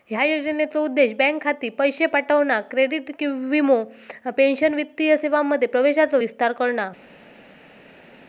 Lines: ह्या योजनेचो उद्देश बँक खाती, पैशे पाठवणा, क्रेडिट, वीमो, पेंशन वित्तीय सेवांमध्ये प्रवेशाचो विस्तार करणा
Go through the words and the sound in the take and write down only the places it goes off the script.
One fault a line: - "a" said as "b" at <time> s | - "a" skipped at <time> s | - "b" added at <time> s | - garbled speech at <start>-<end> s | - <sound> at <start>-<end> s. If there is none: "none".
none